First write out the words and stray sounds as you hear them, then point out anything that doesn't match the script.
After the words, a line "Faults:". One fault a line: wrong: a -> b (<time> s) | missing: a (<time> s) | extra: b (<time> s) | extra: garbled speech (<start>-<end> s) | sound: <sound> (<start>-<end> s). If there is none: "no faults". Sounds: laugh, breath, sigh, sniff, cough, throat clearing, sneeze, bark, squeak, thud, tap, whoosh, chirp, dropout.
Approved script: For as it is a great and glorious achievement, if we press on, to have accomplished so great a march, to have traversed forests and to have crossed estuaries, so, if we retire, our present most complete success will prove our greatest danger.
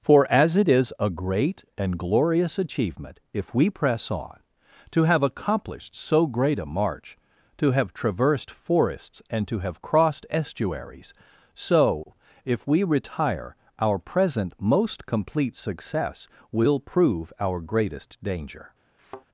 For as it is a great and glorious achievement, if we press on, to have accomplished so great a march, to have traversed forests and to have crossed estuaries, so, if we retire, our present most complete success will prove our greatest danger.
Faults:
sound: thud (19.0-19.3 s)